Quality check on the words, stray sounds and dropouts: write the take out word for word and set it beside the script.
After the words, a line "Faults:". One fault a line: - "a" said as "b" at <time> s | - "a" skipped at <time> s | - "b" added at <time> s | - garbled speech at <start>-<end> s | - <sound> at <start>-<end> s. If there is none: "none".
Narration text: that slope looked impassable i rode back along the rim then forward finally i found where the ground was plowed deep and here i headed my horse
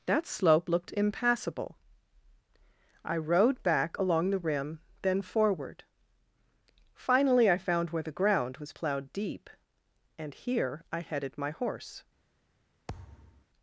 that slope looked impassable i rode back along the rim then forward finally i found where the ground was plowed deep and here i headed my horse
Faults:
- thud at 12.9-13.5 s